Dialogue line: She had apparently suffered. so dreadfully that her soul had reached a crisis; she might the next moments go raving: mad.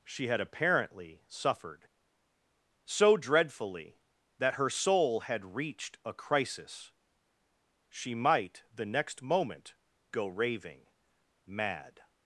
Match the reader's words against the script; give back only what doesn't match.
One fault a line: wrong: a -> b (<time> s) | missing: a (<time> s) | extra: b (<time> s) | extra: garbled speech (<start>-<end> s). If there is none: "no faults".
wrong: moments -> moment (9.2 s)